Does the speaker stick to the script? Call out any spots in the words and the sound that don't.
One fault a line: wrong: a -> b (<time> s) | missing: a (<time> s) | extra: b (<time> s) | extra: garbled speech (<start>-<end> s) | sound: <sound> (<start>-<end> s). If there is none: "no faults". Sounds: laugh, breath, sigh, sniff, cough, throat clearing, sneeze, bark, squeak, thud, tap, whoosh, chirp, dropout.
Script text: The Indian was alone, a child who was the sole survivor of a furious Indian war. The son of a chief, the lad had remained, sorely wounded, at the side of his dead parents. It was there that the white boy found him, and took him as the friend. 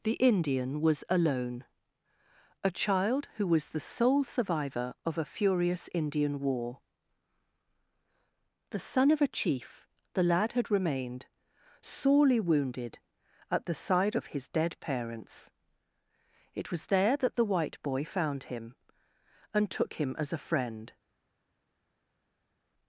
wrong: the -> a (20.3 s)